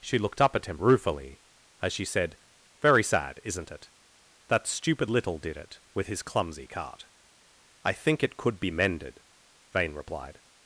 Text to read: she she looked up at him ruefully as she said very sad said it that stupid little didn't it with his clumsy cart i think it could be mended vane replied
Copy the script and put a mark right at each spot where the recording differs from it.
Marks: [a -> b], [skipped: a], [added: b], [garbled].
she [skipped: she] looked up at him ruefully as she said very sad [said -> isn't] it that stupid little [didn't -> did] it with his clumsy cart i think it could be mended vane replied